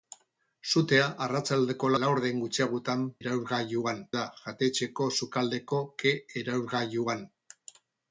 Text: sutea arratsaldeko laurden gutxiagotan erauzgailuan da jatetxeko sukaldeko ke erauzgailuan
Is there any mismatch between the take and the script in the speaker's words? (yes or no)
no